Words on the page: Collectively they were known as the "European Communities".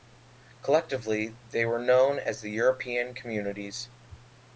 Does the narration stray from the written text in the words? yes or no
no